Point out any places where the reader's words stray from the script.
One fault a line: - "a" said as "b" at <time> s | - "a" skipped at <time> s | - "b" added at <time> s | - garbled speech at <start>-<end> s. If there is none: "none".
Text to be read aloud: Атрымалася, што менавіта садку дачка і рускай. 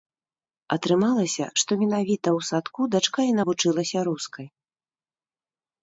- "ў" added at 2.4 s
- "навучылася" added at 3.4 s